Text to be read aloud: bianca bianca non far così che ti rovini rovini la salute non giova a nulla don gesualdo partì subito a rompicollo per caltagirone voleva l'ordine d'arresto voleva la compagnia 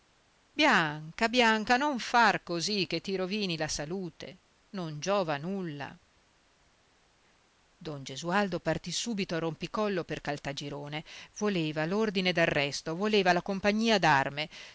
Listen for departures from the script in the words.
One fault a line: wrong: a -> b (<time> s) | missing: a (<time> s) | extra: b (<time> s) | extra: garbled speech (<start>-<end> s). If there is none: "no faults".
missing: rovini (3.5 s)